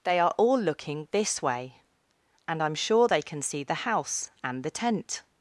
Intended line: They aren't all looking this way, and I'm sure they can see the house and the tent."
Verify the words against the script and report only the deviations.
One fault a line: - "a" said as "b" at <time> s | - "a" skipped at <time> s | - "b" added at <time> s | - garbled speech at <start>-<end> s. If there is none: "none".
- "aren't" said as "are" at 0.2 s